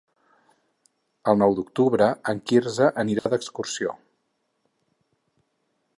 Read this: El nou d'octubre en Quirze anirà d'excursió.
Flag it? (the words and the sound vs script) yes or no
yes